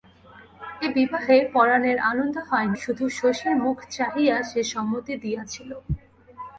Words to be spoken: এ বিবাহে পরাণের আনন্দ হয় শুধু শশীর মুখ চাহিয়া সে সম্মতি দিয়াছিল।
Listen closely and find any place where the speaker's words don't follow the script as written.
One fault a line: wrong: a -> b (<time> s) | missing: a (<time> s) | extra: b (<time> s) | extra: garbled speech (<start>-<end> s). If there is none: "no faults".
no faults